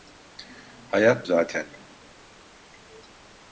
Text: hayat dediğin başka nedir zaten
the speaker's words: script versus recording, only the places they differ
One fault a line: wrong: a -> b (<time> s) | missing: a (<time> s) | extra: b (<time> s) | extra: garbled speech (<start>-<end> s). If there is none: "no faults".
missing: dediğin başka nedir (1.3 s)